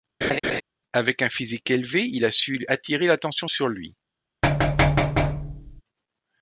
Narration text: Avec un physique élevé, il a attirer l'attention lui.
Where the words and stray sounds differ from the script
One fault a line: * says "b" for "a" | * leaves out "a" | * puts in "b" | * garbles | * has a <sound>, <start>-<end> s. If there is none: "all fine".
* has a laugh, 0.2-0.6 s
* puts in "su"
* puts in "sur"
* has a thud, 4.4-5.8 s